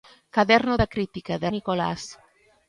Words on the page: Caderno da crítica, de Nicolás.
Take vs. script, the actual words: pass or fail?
pass